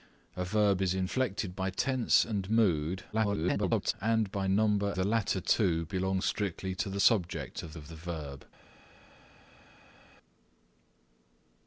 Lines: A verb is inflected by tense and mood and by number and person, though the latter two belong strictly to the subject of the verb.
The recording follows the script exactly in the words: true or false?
false